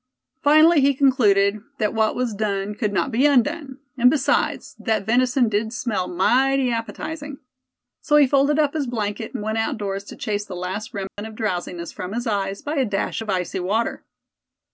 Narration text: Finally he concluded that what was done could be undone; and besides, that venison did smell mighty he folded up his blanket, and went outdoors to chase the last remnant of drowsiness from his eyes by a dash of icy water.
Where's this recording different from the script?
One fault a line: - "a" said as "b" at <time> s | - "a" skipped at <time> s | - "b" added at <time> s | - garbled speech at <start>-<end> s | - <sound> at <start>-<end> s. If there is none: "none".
- "not" added at 2.9 s
- "appetizing So" added at 6.7 s
- dropout at 11.1-11.2 s